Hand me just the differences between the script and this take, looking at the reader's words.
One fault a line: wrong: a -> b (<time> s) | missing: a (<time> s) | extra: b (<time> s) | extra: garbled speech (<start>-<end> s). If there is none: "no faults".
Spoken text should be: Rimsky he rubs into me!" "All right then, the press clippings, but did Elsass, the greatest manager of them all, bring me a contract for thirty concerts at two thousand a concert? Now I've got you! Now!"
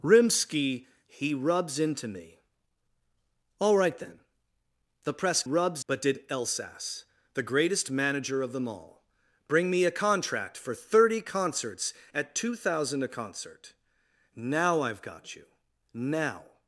wrong: clippings -> rubs (5.4 s)